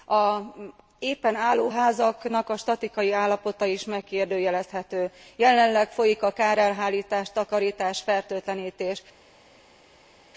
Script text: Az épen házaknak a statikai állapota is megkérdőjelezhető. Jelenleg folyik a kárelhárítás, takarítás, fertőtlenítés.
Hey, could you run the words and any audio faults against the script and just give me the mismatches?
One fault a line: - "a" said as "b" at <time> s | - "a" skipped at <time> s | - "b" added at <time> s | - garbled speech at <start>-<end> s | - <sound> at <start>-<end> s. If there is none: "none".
- "álló" added at 1.4 s